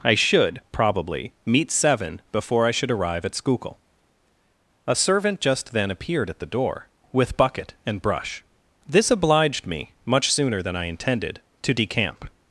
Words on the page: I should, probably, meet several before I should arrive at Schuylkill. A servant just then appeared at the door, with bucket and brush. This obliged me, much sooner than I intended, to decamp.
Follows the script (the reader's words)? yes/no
no